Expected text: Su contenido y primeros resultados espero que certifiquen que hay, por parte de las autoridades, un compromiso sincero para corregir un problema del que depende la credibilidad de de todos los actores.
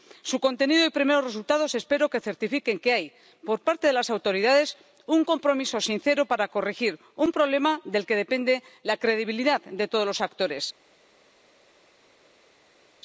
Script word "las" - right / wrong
right